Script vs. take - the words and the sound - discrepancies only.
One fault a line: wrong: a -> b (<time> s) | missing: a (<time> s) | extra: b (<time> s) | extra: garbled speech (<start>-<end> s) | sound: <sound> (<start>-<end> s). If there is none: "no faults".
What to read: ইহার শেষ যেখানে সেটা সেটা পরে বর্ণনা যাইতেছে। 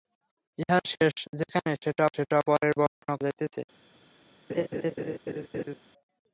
sound: dropout (2.9-3.0 s)
sound: laugh (4.5-5.8 s)